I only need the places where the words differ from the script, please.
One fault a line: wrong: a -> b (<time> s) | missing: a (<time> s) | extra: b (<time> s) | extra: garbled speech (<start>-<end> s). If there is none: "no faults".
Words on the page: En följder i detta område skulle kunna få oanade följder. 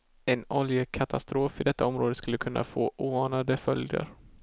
wrong: följder -> oljekatastrof (0.5 s)